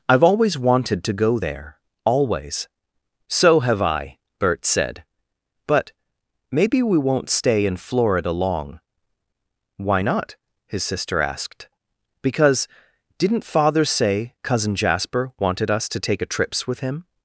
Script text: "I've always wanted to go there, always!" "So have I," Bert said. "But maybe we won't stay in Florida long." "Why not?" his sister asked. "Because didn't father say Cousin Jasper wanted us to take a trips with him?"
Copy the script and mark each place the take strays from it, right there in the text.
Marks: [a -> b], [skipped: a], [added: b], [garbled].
"I've always wanted to go there, always!" "So have I," Bert said. "But maybe we won't stay in Florida long." "Why not?" his sister asked. "Because didn't father say Cousin Jasper wanted us to take a trips with him?"